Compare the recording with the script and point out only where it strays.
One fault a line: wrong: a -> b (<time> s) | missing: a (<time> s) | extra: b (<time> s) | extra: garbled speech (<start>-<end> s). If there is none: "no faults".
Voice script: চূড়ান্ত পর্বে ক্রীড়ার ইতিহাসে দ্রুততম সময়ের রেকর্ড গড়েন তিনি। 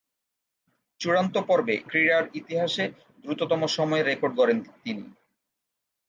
no faults